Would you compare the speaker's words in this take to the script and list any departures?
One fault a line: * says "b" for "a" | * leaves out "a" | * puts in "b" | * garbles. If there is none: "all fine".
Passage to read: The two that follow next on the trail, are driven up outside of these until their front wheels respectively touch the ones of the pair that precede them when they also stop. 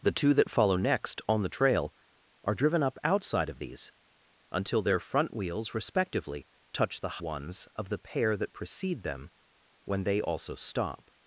all fine